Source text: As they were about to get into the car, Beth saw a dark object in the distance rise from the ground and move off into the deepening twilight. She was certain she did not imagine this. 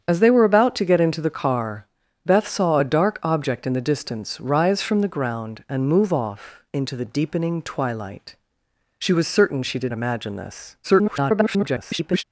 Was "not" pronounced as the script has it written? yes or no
no